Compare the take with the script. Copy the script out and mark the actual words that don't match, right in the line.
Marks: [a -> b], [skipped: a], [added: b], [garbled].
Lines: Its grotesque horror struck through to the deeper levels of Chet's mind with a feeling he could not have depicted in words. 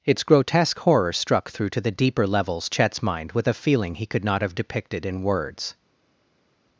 Its grotesque horror struck through to the deeper levels [skipped: of] Chet's mind with a feeling he could not have depicted in words.